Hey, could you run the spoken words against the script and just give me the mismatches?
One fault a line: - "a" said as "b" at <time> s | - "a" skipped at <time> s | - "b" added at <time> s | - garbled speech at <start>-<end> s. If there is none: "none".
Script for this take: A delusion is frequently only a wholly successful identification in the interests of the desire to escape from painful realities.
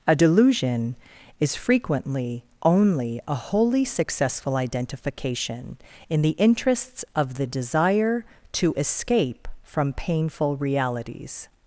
none